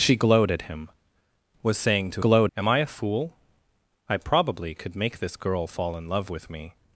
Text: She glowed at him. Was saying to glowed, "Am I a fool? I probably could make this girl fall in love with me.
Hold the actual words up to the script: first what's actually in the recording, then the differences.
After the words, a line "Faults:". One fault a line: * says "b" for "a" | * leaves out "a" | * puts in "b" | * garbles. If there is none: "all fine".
She glowed at him. Was saying to glowed, "Am I a fool? I probably could make this girl fall in love with me.
Faults:
all fine